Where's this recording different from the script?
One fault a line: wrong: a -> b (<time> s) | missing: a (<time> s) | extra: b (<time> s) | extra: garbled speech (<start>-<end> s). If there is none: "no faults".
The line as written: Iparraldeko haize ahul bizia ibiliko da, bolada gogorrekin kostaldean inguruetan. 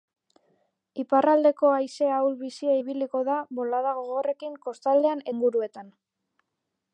no faults